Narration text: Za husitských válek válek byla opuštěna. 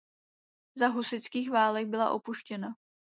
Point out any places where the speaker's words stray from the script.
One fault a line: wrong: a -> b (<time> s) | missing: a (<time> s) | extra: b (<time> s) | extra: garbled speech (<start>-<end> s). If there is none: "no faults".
missing: válek (1.9 s)